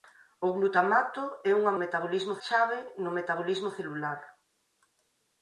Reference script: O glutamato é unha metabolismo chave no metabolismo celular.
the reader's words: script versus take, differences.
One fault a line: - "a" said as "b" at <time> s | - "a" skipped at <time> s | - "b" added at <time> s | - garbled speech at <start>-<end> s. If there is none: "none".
none